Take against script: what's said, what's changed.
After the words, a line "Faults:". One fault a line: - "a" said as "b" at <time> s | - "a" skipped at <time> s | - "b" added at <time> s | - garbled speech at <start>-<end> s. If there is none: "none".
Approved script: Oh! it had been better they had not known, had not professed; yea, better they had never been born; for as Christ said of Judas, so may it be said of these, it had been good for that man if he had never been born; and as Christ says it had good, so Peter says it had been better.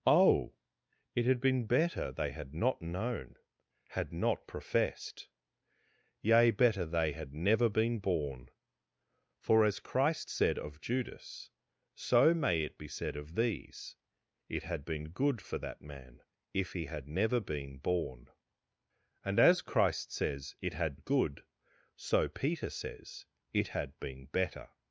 Oh! it had been better they had not known, had not professed; yea, better they had never been born; for as Christ said of Judas, so may it be said of these, it had been good for that man if he had never been born; and as Christ says it had good, so Peter says it had been better.
Faults:
none